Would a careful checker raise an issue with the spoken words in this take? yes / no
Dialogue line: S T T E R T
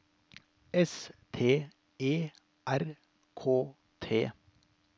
yes